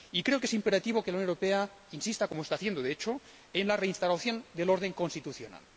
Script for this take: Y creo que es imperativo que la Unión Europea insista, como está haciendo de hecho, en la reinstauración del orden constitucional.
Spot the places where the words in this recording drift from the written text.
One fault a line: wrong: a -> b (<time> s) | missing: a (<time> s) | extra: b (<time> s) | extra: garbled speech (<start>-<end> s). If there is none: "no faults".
no faults